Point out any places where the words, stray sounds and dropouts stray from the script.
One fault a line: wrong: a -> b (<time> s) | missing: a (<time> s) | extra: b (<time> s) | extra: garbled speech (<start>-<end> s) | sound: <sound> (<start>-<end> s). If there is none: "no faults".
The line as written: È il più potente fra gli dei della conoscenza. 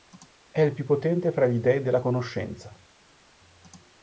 no faults